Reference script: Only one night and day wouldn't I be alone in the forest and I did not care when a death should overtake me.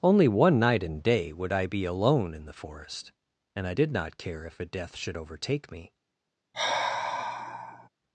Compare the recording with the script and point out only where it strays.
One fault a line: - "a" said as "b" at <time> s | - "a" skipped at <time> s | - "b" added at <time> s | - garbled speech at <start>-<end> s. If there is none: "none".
- "wouldn't" said as "would" at 1.3 s
- "when" said as "if" at 4.4 s